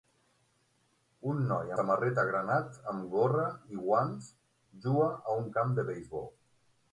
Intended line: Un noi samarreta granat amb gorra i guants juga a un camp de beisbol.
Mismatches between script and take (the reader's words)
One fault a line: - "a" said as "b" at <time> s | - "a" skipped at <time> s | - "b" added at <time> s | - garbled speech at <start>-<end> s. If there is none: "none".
none